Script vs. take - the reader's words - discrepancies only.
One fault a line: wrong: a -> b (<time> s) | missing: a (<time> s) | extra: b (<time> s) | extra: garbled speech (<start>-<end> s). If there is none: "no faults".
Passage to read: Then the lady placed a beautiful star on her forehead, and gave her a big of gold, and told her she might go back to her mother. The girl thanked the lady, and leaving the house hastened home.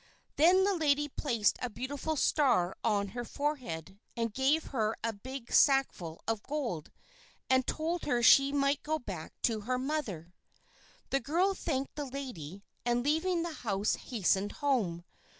extra: sackful (5.5 s)